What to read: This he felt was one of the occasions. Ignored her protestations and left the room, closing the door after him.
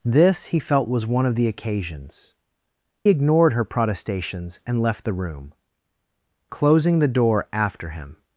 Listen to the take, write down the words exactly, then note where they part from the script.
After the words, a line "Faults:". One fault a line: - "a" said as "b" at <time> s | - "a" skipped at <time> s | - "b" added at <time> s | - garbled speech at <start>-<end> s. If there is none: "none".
This he felt was one of the occasions. Ignored her protestations and left the room, closing the door after him.
Faults:
none